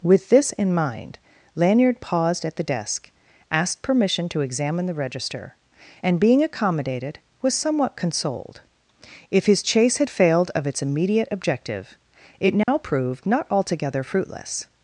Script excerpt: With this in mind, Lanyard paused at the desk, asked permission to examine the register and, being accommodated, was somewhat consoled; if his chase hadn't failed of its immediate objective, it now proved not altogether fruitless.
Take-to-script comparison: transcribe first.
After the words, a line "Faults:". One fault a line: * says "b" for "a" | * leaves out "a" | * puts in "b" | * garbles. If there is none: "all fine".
With this in mind, Lanyard paused at the desk, asked permission to examine the register and, being accommodated, was somewhat consoled; if his chase had failed of its immediate objective, it now proved not altogether fruitless.
Faults:
* says "had" for "hadn't"